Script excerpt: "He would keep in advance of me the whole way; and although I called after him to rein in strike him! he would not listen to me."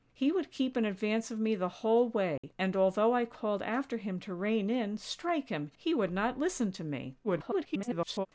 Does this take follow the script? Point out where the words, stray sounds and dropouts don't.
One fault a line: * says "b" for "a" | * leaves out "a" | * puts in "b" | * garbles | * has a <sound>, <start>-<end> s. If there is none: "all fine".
* has a dropout, 2.4-2.4 s
* garbles